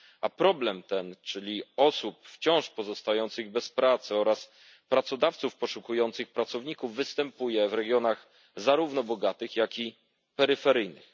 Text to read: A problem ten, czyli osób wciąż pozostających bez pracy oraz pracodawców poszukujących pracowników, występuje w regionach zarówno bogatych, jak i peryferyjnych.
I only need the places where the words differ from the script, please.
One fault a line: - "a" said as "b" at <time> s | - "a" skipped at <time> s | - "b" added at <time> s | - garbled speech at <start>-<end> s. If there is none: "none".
none